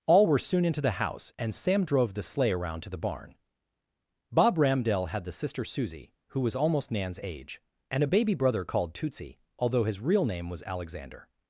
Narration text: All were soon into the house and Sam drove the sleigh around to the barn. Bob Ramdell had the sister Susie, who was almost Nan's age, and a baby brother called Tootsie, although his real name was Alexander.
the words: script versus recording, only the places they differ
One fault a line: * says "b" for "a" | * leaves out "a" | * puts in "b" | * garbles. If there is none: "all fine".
all fine